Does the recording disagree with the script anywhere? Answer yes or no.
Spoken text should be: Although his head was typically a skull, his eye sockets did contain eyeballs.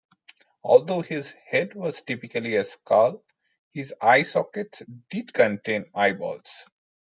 no